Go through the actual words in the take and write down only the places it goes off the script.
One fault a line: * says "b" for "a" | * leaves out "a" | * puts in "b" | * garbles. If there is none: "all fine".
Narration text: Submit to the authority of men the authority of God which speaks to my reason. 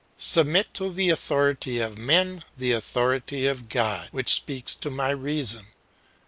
all fine